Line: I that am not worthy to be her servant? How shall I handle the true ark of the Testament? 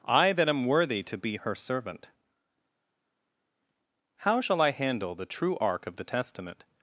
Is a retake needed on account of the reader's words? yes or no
yes